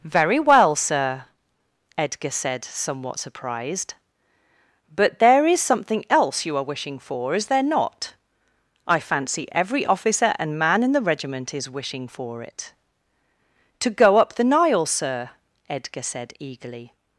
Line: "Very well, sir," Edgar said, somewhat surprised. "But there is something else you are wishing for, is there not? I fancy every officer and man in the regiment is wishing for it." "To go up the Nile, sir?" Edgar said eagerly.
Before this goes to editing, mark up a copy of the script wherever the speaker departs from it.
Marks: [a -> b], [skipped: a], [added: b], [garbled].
"Very well, sir," Edgar said, somewhat surprised. "But there is something else you are wishing for, is there not? I fancy every officer and man in the regiment is wishing for it." "To go up the Nile, sir?" Edgar said eagerly.